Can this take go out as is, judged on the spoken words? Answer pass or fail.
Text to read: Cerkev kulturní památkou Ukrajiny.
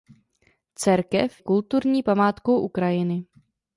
pass